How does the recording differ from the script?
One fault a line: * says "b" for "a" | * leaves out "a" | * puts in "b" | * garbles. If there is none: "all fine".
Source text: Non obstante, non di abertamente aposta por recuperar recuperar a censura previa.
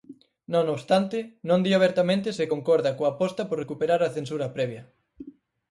* puts in "se concorda coa"
* leaves out "recuperar"